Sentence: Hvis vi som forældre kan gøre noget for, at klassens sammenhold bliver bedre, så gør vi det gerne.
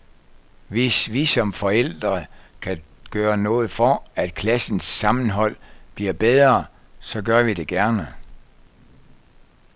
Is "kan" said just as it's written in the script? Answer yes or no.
yes